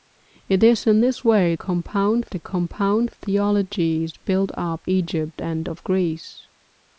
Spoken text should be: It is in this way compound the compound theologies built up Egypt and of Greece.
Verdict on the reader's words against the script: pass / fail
pass